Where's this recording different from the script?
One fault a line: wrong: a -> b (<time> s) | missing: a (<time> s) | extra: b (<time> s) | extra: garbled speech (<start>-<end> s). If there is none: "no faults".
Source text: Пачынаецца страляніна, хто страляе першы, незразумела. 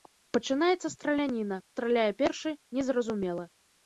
missing: хто (1.6 s)